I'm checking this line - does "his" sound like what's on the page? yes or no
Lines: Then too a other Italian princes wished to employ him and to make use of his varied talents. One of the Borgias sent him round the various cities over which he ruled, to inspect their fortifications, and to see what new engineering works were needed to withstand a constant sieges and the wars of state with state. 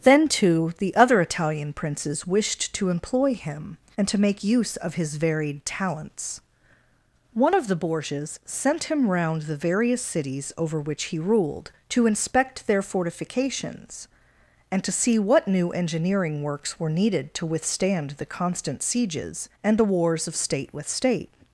yes